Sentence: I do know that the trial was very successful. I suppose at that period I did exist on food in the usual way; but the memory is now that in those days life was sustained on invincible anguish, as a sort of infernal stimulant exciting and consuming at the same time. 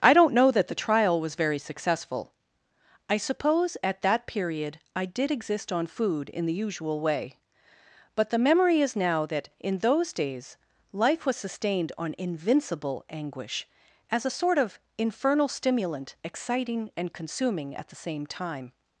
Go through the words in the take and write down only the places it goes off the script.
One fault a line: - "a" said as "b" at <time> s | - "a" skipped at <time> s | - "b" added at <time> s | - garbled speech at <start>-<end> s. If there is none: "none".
- "do" said as "don't" at 0.1 s